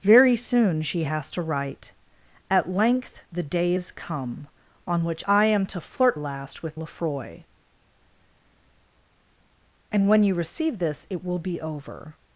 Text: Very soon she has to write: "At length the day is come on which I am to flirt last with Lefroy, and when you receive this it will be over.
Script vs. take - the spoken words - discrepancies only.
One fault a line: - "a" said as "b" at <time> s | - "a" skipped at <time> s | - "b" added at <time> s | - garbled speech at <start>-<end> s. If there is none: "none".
none